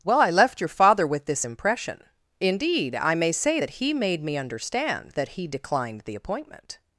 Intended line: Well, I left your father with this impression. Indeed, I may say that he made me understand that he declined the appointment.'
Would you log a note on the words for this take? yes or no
no